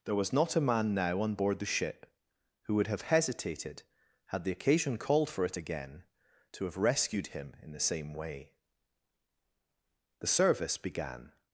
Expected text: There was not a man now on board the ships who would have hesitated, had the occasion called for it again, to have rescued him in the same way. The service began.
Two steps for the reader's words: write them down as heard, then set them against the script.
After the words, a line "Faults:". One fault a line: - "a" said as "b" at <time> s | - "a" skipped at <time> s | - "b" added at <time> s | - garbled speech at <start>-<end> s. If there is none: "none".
There was not a man now on board the ship who would have hesitated, had the occasion called for it again, to have rescued him in the same way. The service began.
Faults:
- "ships" said as "ship" at 1.6 s